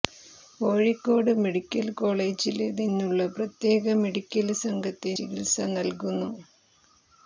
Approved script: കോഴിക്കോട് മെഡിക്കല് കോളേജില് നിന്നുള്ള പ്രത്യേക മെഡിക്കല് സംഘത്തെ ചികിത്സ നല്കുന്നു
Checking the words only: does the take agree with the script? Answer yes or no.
yes